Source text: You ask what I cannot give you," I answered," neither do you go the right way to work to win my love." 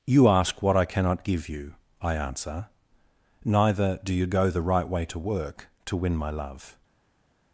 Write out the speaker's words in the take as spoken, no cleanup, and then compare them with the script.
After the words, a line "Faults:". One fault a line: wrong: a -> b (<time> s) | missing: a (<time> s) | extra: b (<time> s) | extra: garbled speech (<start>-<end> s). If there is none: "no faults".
You ask what I cannot give you," I answer," neither do you go the right way to work to win my love."
Faults:
wrong: answered -> answer (2.1 s)